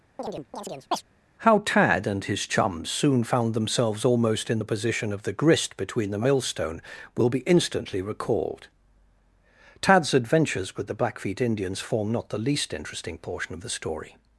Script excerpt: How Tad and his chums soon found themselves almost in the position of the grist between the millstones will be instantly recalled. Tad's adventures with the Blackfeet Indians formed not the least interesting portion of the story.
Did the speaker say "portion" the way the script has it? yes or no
yes